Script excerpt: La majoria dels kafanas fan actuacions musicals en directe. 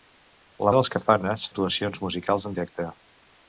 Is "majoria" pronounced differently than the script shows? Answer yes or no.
yes